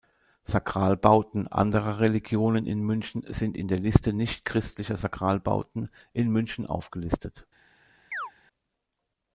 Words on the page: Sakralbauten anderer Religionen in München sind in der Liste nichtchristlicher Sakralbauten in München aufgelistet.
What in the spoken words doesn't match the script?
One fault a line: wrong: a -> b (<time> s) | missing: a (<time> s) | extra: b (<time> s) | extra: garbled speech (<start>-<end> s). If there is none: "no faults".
no faults